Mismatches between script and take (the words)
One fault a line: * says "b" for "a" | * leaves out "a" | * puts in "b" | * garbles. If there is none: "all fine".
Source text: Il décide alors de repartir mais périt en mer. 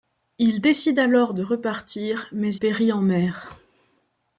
all fine